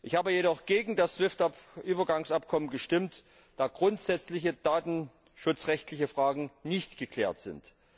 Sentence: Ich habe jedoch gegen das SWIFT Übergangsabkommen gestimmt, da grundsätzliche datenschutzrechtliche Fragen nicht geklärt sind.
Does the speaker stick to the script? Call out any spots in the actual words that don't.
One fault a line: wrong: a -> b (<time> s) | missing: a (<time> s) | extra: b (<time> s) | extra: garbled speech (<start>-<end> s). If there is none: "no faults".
no faults